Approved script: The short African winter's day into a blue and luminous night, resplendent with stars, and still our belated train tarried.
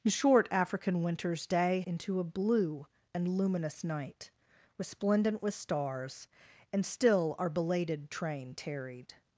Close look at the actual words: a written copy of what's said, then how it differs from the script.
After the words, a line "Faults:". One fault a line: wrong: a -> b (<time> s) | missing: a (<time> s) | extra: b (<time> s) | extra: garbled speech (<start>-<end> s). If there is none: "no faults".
The short African winter's day into a blue and luminous night, resplendent with stars, and still our belated train tarried.
Faults:
no faults